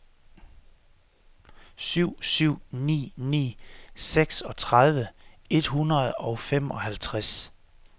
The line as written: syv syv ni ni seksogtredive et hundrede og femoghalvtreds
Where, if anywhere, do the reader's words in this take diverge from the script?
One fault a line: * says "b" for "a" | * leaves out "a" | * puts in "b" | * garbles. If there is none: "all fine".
all fine